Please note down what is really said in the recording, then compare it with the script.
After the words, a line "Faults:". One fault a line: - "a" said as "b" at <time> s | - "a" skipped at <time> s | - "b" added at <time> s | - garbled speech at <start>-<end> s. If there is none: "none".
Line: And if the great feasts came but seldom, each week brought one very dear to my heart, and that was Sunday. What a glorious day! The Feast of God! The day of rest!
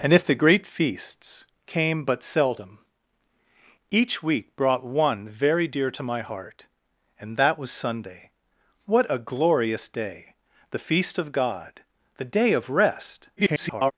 And if the great feasts came but seldom, each week brought one very dear to my heart, and that was Sunday. What a glorious day! The Feast of God! The day of rest! [garbled]
Faults:
- garbled speech at 13.4-13.9 s